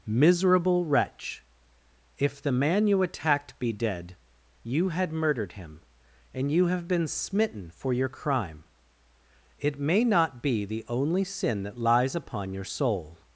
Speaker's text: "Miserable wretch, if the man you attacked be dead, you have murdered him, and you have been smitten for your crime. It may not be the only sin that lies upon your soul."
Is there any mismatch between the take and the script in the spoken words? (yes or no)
yes